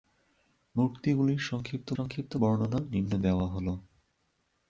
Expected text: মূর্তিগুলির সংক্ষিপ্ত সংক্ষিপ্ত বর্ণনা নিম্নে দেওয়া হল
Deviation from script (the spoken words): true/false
false